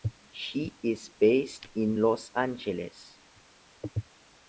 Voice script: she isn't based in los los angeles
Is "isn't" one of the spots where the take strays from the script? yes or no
yes